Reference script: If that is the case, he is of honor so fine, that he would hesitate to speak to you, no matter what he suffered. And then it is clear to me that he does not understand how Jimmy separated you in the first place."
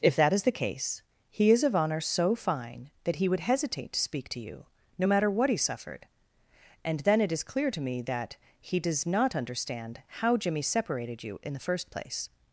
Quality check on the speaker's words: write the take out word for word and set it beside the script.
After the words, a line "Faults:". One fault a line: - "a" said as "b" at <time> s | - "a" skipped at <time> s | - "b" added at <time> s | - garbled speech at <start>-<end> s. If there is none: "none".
If that is the case, he is of honor so fine, that he would hesitate to speak to you, no matter what he suffered. And then it is clear to me that he does not understand how Jimmy separated you in the first place."
Faults:
none